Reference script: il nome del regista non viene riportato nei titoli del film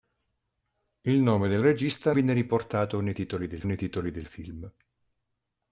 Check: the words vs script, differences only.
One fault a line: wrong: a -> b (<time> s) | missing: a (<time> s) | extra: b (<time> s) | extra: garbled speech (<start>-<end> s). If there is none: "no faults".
missing: non (2.1 s)
extra: nei titoli del (3.6 s)